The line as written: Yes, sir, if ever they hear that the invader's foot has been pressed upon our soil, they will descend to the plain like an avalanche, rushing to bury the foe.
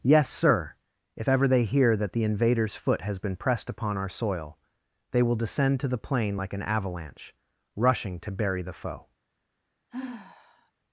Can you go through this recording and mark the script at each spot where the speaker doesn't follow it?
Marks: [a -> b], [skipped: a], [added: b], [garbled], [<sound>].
Yes, sir, if ever they hear that the invader's foot has been pressed upon our soil, they will descend to the plain like an avalanche, rushing to bury the foe. [sigh]